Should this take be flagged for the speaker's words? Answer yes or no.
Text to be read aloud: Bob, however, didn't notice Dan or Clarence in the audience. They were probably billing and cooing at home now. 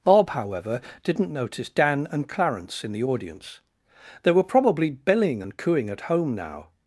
yes